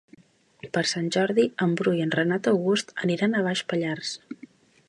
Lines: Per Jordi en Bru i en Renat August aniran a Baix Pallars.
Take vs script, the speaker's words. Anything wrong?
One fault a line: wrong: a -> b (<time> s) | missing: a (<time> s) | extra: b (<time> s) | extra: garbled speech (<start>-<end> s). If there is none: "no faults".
extra: Sant (0.9 s)